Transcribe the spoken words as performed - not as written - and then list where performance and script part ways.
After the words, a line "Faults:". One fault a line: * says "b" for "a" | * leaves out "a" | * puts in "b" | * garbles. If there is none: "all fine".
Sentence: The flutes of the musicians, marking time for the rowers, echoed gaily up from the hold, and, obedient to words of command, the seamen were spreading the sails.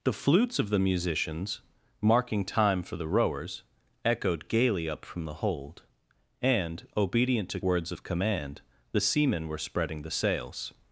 The flutes of the musicians, marking time for the rowers, echoed gaily up from the hold, and, obedient to words of command, the seamen were spreading the sails.
Faults:
all fine